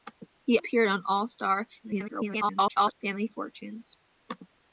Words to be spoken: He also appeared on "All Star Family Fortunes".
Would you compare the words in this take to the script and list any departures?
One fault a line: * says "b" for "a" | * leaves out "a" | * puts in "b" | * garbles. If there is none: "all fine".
* leaves out "also"
* garbles